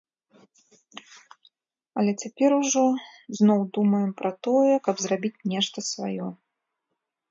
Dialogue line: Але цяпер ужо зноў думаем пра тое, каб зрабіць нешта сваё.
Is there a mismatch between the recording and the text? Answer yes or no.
no